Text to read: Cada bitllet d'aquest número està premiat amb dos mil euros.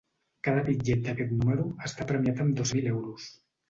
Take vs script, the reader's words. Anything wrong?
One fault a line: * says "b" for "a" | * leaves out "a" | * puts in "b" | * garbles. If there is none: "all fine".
all fine